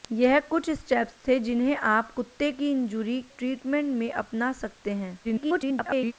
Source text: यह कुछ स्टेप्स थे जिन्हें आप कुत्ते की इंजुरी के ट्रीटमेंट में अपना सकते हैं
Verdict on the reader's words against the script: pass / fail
fail